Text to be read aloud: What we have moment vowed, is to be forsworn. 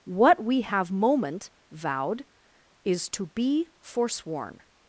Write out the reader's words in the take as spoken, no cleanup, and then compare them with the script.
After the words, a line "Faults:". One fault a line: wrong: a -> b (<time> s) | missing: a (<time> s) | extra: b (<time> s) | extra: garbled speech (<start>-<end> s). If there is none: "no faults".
What we have moment vowed, is to be forsworn.
Faults:
no faults